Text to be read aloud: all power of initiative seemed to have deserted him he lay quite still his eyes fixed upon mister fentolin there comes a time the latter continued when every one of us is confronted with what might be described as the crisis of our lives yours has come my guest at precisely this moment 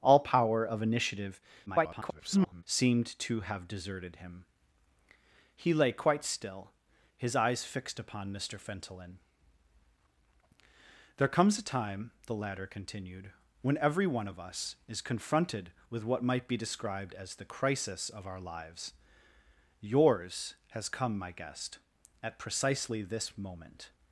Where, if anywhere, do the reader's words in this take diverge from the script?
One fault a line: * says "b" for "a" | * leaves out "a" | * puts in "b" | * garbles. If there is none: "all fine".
* garbles